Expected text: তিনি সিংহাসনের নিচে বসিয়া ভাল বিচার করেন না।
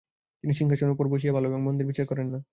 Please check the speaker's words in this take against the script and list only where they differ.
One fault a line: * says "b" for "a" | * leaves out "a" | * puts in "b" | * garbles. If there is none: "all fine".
* says "উপর" for "নিচে"
* puts in "এবং মন্দের"